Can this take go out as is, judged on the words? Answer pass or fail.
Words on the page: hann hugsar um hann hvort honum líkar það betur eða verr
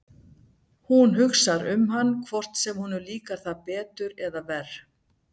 fail